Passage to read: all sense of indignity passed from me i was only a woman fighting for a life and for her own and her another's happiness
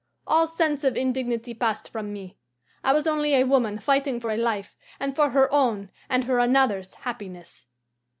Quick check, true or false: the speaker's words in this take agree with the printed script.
true